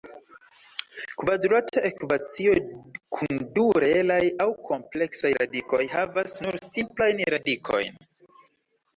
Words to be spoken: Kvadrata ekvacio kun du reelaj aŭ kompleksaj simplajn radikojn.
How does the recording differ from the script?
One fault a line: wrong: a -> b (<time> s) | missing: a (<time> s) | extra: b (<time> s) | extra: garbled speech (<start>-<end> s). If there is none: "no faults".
extra: radikoj havas nur (5.4 s)